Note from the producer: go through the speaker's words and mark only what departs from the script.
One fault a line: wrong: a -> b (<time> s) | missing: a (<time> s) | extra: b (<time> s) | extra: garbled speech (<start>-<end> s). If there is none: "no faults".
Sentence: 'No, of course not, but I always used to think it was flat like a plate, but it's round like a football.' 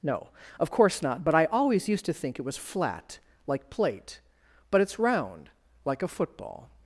missing: a (3.7 s)